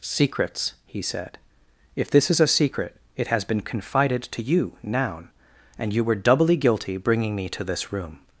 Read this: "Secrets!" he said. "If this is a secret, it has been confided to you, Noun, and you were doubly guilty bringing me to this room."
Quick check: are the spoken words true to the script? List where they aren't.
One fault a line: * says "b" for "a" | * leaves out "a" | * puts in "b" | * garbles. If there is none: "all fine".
all fine